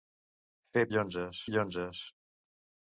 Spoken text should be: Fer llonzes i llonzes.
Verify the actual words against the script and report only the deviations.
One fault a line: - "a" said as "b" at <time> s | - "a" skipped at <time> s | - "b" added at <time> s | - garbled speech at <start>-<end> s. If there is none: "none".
none